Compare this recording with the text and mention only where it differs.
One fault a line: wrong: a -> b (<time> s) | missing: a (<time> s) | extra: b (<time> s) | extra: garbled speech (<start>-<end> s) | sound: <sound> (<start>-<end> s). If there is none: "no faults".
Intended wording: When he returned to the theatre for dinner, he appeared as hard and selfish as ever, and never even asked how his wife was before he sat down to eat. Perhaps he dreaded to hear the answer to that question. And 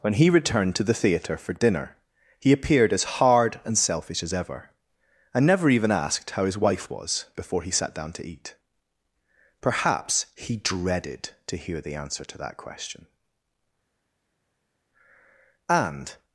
no faults